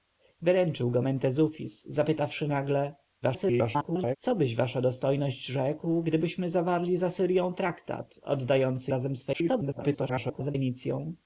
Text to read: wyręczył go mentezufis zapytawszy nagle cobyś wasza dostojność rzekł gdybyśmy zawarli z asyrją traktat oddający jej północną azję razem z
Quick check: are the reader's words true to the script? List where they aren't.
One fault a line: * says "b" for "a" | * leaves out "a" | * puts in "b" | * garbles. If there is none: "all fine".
* garbles
* leaves out "jej północną azję"
* garbles